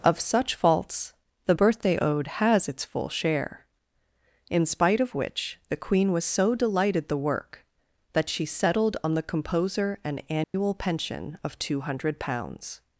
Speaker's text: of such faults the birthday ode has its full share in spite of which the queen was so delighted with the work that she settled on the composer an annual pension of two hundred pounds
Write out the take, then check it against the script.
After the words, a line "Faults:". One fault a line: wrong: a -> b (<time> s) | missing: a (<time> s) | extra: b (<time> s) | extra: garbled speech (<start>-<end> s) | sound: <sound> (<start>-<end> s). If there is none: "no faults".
of such faults the birthday ode has its full share in spite of which the queen was so delighted the work that she settled on the composer an annual pension of two hundred pounds
Faults:
missing: with (7.1 s)
sound: dropout (10.4-10.5 s)